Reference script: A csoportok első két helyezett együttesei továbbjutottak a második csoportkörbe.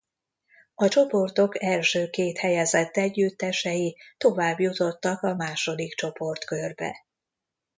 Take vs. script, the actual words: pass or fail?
pass